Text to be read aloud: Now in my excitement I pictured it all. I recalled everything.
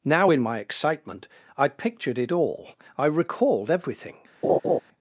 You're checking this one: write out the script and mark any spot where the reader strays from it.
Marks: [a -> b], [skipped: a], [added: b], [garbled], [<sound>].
Now in my excitement I pictured it all. I recalled everything. [laugh]